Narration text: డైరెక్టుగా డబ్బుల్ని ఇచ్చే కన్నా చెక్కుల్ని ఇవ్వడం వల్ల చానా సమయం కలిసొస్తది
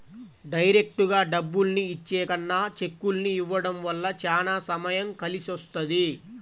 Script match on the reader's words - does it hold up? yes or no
yes